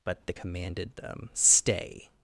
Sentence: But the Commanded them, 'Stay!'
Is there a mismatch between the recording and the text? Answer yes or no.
no